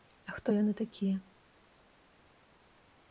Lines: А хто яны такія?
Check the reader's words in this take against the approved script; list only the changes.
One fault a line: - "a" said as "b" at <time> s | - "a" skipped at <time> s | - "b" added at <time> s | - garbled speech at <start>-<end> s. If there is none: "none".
none